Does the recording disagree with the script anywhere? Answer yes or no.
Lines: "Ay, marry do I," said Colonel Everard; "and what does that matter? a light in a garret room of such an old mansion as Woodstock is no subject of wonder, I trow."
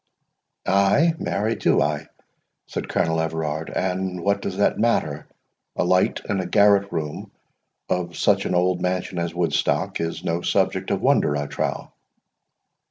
no